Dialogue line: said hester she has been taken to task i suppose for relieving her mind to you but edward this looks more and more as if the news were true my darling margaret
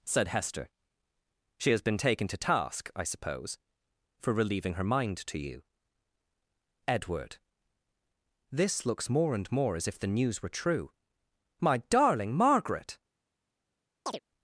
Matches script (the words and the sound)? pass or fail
fail